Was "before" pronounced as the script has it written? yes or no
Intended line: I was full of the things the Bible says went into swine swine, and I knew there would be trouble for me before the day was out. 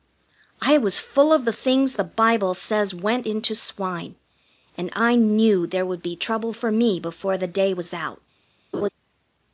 yes